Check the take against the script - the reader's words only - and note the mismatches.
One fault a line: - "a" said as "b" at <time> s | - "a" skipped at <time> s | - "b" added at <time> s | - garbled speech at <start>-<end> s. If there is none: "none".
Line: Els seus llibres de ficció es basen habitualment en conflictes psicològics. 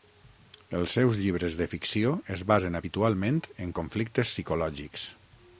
none